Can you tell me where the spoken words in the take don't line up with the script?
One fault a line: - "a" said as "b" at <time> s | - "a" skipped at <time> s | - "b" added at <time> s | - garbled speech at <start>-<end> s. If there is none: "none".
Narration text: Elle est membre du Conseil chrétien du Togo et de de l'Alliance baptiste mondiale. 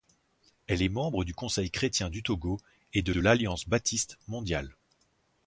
none